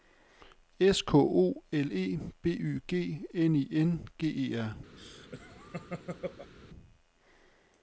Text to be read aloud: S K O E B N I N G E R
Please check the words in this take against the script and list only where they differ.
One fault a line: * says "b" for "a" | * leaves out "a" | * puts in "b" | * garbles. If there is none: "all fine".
* puts in "L"
* puts in "Y G"